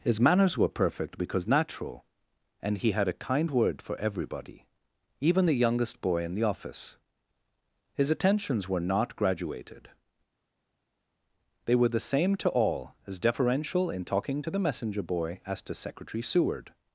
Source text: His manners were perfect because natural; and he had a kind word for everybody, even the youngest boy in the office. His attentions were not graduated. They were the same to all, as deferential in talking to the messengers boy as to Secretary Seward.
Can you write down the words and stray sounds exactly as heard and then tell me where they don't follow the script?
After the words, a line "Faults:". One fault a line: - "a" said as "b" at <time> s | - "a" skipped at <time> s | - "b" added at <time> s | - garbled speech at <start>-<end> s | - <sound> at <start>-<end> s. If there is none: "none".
His manners were perfect because natural; and he had a kind word for everybody, even the youngest boy in the office. His attentions were not graduated. They were the same to all, as deferential in talking to the messenger boy as to Secretary Seward.
Faults:
- "messengers" said as "messenger" at 14.6 s